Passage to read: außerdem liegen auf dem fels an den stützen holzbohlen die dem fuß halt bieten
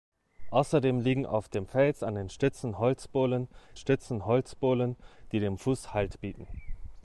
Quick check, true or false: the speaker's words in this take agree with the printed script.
false